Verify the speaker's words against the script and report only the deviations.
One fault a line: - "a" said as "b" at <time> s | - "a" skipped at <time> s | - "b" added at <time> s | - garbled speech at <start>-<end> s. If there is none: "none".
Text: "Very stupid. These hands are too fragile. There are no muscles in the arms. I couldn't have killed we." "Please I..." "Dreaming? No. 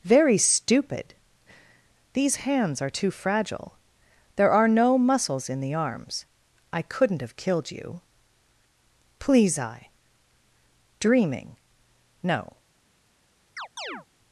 - "we" said as "you" at 7.7 s